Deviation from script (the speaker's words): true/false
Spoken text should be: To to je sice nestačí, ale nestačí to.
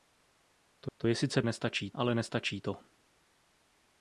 false